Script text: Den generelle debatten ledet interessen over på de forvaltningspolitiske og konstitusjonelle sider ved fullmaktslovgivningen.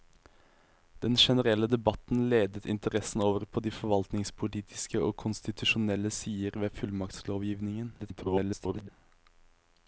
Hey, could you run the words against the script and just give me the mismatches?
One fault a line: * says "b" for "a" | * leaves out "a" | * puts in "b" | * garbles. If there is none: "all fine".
* garbles